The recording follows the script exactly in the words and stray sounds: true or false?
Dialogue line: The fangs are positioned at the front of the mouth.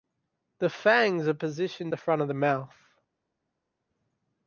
false